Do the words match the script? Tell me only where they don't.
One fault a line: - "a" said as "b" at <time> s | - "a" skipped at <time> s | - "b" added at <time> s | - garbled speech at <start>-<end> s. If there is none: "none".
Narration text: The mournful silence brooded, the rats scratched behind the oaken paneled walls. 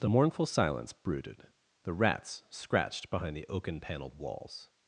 none